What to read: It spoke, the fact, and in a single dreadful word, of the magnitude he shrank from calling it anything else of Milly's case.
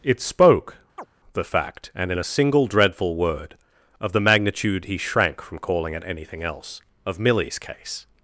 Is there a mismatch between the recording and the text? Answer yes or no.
no